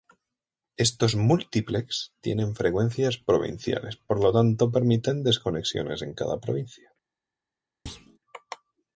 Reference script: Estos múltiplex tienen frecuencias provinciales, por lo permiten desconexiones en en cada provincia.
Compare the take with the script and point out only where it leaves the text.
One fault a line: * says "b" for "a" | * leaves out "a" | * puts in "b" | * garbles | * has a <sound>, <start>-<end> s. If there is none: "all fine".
* puts in "tanto"
* leaves out "en"
* has a thud, 7.9-8.2 s